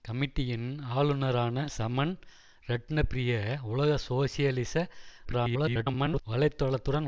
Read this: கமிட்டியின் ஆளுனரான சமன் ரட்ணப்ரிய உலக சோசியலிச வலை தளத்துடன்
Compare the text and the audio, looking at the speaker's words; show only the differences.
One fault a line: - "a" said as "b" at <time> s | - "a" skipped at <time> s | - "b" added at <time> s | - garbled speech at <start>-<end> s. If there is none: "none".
- garbled speech at 5.2-6.2 s